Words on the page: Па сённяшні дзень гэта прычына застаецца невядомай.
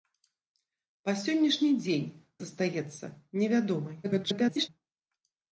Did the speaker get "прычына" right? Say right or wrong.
wrong